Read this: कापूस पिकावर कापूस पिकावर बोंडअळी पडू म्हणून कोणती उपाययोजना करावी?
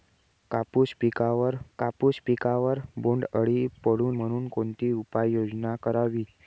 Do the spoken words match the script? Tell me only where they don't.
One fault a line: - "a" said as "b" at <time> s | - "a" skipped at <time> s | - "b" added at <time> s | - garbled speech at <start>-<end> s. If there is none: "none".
none